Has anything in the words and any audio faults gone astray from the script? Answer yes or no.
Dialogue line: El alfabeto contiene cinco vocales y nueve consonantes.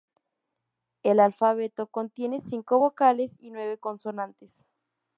no